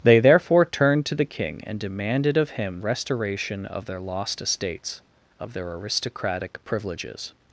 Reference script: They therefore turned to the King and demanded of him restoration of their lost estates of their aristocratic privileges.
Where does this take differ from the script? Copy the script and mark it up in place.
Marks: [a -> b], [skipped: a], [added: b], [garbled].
They therefore turned to the King and demanded of him restoration of their lost estates of their aristocratic privileges.